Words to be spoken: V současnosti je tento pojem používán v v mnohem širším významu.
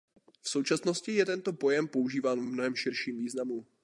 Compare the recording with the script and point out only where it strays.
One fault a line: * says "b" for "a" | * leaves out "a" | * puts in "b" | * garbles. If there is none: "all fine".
all fine